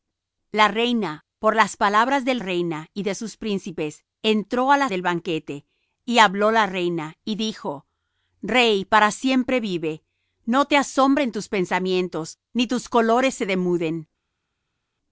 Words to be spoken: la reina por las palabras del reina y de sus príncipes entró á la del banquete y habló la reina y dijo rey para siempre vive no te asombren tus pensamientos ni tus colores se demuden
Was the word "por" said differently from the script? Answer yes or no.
no